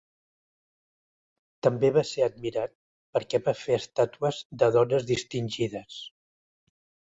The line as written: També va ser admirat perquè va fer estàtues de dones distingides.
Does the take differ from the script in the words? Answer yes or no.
no